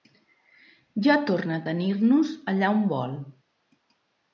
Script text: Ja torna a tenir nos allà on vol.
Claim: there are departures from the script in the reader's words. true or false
false